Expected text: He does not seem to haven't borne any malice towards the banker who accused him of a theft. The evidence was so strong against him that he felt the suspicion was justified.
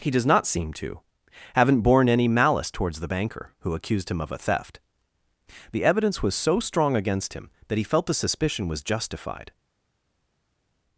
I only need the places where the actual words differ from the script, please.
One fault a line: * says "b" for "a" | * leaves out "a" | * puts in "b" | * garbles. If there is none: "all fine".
all fine